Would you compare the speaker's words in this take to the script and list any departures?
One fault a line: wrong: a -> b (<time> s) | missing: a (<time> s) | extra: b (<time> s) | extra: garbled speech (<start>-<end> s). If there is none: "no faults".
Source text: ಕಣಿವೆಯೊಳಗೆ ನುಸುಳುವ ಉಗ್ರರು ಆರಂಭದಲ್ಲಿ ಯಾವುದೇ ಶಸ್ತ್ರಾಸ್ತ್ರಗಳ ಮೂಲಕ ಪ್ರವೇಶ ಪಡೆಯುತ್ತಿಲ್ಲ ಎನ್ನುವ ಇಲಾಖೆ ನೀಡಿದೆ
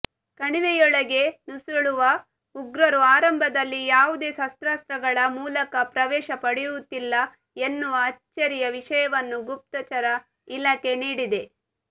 extra: ಅಚ್ಚರಿಯ ವಿಷಯವನ್ನು ಗುಪ್ತಚರ (8.1 s)